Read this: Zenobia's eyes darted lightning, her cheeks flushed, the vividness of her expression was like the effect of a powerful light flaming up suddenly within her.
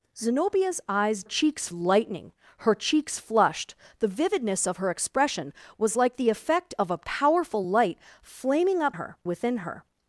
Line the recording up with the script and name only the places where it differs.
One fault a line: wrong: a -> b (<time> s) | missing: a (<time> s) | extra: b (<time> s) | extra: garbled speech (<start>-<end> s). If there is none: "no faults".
wrong: darted -> cheeks (1.2 s)
wrong: suddenly -> her (8.9 s)